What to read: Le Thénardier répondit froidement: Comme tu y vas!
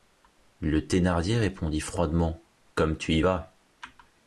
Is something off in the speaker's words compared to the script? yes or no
no